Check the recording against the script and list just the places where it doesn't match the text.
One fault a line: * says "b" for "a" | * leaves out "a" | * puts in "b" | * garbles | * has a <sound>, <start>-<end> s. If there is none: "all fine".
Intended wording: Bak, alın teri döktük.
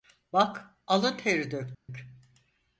* has a dropout, 1.7-1.9 s